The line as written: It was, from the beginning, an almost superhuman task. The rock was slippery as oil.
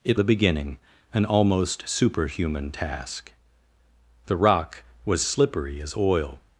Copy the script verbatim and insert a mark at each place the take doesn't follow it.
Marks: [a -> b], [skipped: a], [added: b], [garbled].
It [skipped: was, from] the beginning, an almost superhuman task. The rock was slippery as oil.